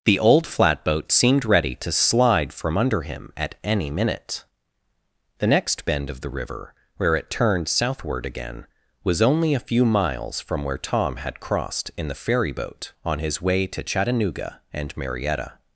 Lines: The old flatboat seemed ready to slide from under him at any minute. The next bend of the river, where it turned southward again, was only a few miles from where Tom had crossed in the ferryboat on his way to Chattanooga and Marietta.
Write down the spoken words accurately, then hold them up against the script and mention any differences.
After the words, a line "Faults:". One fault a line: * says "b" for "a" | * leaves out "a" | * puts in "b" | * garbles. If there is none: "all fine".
The old flatboat seemed ready to slide from under him at any minute. The next bend of the river, where it turned southward again, was only a few miles from where Tom had crossed in the ferryboat on his way to Chattanooga and Marietta.
Faults:
all fine